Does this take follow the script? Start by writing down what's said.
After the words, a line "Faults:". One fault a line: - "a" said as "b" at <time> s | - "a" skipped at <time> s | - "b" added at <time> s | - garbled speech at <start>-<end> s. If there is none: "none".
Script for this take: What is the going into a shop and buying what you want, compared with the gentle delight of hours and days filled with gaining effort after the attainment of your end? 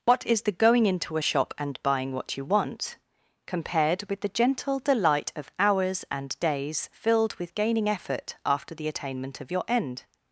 What is the going into a shop and buying what you want, compared with the gentle delight of hours and days filled with gaining effort after the attainment of your end?
Faults:
none